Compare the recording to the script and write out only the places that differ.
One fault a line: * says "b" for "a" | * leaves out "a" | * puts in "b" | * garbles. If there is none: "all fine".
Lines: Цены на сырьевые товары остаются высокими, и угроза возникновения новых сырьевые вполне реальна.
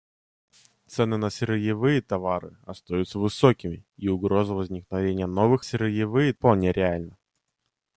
all fine